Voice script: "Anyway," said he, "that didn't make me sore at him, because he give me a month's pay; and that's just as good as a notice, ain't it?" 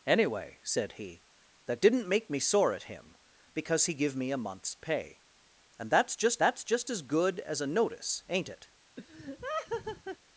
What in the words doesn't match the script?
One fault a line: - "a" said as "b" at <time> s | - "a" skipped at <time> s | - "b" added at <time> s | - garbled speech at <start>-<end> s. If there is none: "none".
- "that's just" added at 6.4 s